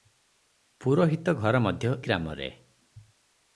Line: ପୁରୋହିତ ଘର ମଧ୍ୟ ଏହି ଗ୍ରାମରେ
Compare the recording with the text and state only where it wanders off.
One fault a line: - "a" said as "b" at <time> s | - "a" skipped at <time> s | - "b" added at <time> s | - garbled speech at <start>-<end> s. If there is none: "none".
- "ଏହି" skipped at 1.9 s